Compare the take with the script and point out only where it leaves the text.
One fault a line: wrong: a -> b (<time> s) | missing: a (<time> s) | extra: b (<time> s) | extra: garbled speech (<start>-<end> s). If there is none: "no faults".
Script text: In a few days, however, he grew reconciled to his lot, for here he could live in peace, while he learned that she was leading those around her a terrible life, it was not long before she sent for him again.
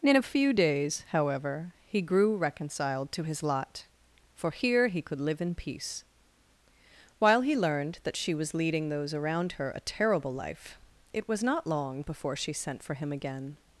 no faults